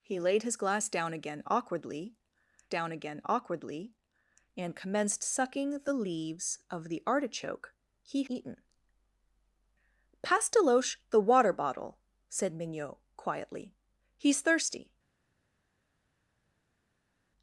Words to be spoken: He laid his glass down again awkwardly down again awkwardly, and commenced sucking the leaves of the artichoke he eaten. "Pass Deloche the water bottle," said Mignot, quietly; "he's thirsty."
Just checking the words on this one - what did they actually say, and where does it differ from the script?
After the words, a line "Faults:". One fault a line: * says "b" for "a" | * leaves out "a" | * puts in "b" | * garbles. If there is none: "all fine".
He laid his glass down again awkwardly down again awkwardly, and commenced sucking the leaves of the artichoke he eaten. "Pass Deloche the water bottle," said Mignot, quietly; "he's thirsty."
Faults:
all fine